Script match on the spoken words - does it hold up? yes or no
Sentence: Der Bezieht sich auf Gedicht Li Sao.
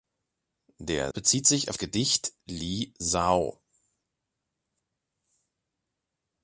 yes